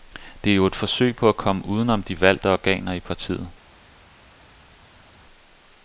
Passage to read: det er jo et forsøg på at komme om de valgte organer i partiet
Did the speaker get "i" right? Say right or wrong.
right